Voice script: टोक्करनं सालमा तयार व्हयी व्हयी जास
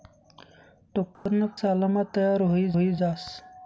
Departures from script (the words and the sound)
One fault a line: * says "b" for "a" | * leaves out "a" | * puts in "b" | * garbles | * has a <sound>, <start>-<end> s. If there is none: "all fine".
* has a dropout, 1.2-1.3 s